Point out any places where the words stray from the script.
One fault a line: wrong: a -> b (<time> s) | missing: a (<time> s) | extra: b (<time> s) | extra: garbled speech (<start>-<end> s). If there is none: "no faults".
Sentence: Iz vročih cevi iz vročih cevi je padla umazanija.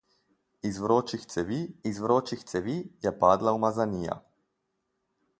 no faults